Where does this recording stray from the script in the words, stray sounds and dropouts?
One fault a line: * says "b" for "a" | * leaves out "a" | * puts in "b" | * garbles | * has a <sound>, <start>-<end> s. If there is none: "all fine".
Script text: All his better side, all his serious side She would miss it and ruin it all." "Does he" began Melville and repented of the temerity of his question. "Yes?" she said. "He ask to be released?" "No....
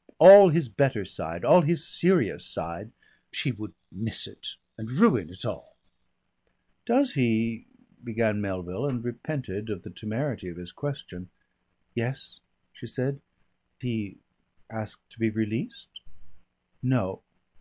all fine